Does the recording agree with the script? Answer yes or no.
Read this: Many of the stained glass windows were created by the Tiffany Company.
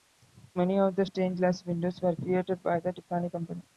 yes